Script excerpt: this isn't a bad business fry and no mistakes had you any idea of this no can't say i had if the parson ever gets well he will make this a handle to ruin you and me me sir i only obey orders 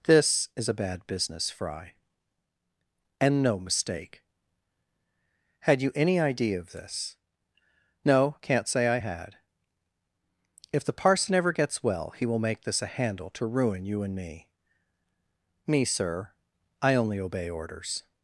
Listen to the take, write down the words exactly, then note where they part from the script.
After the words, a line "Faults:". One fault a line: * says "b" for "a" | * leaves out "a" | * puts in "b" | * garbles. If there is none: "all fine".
this is a bad business fry and no mistake had you any idea of this no can't say i had if the parson ever gets well he will make this a handle to ruin you and me me sir i only obey orders
Faults:
* says "is" for "isn't"
* says "mistake" for "mistakes"